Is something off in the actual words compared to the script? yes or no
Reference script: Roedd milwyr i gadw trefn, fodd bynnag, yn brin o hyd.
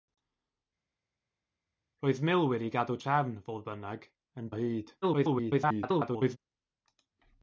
yes